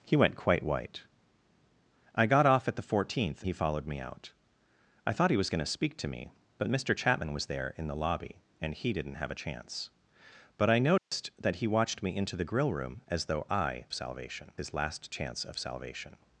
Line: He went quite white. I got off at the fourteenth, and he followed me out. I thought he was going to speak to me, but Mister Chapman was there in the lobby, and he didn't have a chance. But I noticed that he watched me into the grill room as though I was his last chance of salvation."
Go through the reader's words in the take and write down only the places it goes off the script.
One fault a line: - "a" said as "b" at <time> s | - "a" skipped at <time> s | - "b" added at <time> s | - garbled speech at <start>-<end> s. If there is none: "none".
- "and" skipped at 3.4 s
- "was" said as "salvation" at 13.9 s